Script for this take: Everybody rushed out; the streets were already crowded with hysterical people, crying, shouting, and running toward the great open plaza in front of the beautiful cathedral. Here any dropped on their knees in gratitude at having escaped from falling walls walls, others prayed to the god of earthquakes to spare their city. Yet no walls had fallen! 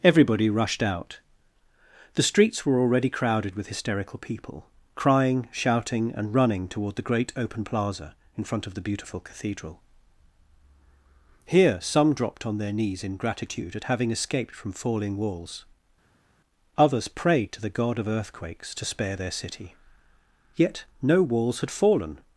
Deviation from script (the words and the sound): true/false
true